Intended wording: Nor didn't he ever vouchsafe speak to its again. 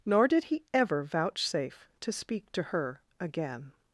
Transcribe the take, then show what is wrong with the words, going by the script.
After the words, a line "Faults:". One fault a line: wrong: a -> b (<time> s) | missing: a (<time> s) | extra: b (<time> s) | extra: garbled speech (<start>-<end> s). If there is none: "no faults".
Nor did he ever vouchsafe to speak to her again.
Faults:
wrong: didn't -> did (0.3 s)
extra: to (2.0 s)
wrong: its -> her (2.6 s)